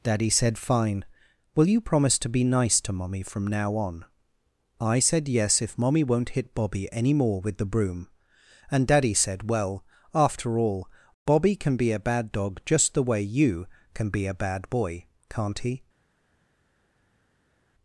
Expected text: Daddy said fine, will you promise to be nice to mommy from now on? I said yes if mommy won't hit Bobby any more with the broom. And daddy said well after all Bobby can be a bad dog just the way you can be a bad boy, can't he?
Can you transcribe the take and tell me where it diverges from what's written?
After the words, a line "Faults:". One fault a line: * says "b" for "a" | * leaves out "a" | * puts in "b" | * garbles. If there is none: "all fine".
Daddy said fine, will you promise to be nice to mommy from now on? I said yes if mommy won't hit Bobby any more with the broom. And daddy said well after all Bobby can be a bad dog just the way you can be a bad boy, can't he?
Faults:
all fine